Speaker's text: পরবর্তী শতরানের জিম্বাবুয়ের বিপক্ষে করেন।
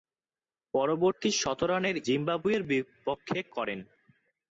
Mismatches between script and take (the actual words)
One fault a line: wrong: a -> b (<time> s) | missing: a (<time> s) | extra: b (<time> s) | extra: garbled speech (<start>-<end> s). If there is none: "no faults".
no faults